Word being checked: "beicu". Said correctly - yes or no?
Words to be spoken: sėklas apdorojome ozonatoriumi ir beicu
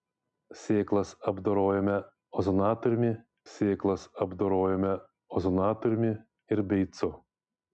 yes